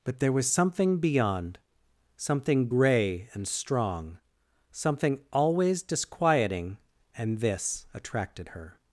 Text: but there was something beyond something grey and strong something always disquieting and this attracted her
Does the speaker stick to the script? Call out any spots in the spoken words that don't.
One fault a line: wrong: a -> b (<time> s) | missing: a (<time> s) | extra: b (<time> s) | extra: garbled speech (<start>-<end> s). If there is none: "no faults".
no faults